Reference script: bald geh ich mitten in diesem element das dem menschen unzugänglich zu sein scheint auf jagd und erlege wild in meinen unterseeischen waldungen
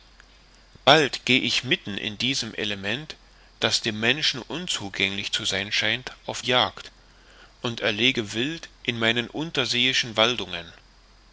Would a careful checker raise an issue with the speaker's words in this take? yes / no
no